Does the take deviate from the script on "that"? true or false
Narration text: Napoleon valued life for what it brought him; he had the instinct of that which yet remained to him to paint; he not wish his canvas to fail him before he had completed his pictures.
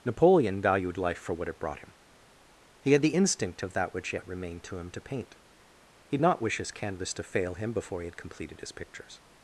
false